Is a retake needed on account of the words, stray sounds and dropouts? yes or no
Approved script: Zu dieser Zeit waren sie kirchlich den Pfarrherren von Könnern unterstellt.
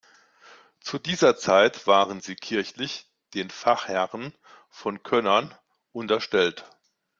no